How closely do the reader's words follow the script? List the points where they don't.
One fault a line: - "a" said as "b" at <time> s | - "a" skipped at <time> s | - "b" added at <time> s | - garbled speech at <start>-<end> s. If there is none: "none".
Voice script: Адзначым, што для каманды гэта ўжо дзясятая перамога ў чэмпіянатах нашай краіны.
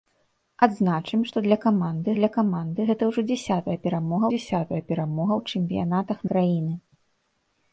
- "для каманды" added at 2.2 s
- "дзясятая перамога" added at 4.3 s
- "нашай" skipped at 6.2 s